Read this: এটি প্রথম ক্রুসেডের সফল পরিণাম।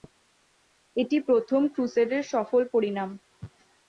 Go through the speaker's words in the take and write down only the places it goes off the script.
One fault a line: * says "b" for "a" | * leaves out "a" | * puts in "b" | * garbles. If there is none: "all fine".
all fine